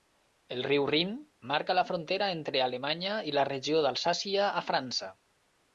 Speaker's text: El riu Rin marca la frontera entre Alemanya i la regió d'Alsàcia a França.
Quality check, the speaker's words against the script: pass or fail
pass